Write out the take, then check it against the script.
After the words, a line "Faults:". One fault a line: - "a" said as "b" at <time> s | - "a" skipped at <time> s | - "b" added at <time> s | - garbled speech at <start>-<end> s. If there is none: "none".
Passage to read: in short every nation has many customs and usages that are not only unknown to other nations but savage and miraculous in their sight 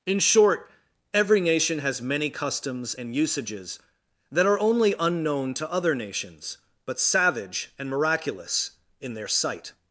in short every nation has many customs and usages that are only unknown to other nations but savage and miraculous in their sight
Faults:
- "not" skipped at 4.6 s